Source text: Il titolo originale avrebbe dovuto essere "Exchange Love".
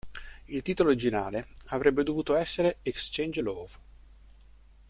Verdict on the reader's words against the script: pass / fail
pass